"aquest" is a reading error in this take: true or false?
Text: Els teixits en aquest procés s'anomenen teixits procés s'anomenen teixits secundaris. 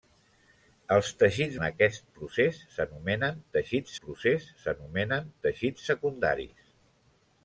false